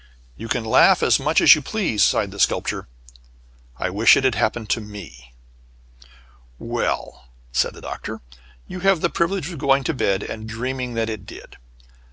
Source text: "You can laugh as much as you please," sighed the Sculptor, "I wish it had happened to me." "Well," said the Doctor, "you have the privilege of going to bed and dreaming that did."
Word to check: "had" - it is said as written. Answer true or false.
true